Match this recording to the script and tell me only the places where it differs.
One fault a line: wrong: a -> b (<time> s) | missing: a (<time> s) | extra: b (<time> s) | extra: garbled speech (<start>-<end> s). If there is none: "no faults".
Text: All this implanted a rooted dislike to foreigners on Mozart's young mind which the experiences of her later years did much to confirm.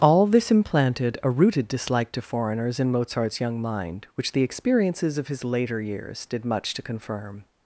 wrong: on -> in (2.8 s)
wrong: her -> his (5.3 s)